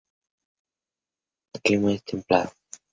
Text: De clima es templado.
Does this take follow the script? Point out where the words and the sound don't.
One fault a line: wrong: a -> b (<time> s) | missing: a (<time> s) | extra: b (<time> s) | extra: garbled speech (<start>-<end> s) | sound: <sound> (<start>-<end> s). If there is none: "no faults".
no faults